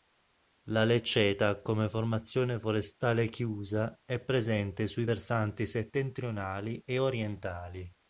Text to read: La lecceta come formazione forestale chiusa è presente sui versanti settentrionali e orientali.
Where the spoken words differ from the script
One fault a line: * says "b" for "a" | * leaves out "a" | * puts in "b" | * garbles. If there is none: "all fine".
all fine